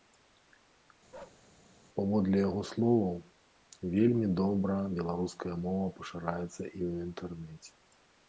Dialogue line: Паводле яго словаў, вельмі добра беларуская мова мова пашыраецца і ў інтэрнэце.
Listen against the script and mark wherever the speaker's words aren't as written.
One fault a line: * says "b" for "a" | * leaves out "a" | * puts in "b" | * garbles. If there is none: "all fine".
* leaves out "мова"